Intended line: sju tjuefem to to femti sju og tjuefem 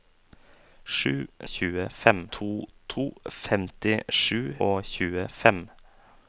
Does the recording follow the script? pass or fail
pass